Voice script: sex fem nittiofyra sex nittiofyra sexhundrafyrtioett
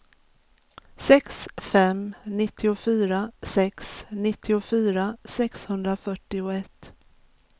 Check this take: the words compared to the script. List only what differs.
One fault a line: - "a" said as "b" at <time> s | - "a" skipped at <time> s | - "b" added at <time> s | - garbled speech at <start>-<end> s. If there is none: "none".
none